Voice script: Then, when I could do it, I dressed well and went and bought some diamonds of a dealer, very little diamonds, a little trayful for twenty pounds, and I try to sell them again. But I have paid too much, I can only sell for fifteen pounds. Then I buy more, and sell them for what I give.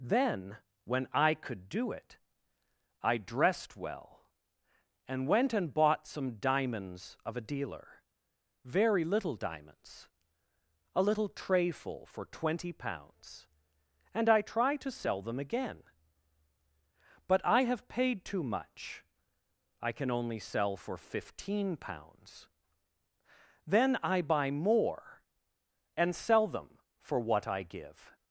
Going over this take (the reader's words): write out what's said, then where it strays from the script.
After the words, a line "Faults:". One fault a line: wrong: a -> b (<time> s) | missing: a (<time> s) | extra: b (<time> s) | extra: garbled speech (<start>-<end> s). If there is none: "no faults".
Then, when I could do it, I dressed well and went and bought some diamonds of a dealer, very little diamonds, a little trayful for twenty pounds, and I try to sell them again. But I have paid too much, I can only sell for fifteen pounds. Then I buy more, and sell them for what I give.
Faults:
no faults